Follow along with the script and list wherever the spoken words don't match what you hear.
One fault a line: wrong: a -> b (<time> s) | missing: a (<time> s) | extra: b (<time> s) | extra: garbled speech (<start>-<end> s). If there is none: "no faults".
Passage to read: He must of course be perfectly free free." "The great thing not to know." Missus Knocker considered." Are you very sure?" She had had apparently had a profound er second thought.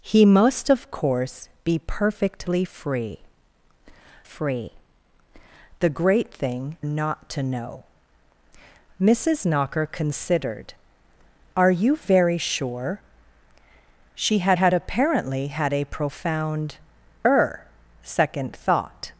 no faults